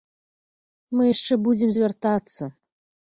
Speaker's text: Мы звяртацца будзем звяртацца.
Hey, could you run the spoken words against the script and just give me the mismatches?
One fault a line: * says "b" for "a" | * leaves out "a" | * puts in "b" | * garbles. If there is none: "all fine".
* says "яшчэ" for "звяртацца"